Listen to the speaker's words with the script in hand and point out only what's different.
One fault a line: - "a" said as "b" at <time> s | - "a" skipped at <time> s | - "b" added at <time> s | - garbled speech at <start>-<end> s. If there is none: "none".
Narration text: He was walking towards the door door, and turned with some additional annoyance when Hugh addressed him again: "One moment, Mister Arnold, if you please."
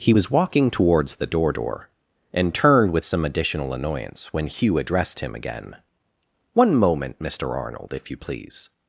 none